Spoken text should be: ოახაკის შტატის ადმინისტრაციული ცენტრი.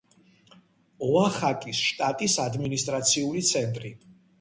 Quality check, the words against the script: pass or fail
pass